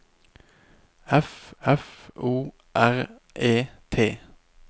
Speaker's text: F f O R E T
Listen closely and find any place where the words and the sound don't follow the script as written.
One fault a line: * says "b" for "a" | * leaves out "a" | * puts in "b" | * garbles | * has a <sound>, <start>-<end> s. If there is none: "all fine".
all fine